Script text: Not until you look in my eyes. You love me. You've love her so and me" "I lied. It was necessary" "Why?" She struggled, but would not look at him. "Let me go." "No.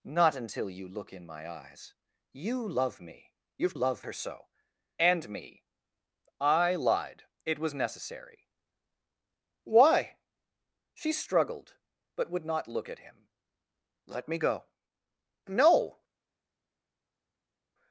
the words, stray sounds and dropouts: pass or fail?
pass